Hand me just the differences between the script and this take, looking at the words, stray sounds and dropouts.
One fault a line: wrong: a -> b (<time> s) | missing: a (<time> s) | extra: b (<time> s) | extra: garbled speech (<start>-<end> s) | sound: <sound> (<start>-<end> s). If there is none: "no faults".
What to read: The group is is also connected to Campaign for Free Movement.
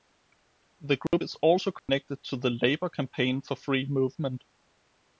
sound: dropout (1.1-1.1 s)
missing: is (1.3 s)
sound: dropout (1.8-1.9 s)
extra: the Labour (2.4 s)